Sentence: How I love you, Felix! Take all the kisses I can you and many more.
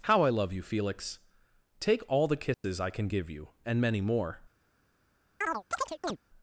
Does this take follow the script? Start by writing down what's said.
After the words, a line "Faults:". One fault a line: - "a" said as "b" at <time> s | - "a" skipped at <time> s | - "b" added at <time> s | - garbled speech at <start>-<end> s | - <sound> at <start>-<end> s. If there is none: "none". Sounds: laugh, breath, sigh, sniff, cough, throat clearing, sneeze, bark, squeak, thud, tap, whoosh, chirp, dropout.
How I love you, Felix! Take all the kisses I can give you and many more.
Faults:
- dropout at 2.5-2.6 s
- "give" added at 3.1 s
- chirp at 5.4-6.2 s